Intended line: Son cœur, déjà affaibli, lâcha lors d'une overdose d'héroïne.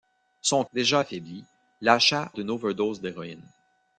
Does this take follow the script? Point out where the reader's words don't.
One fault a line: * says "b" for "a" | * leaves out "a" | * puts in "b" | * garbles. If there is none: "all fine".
* leaves out "cœur"
* leaves out "lors"